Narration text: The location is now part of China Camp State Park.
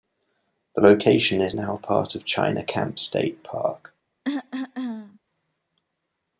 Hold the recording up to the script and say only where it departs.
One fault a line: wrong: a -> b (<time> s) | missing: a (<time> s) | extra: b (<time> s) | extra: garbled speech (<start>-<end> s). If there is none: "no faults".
no faults